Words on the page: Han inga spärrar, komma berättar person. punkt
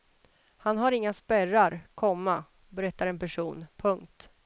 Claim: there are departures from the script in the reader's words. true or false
true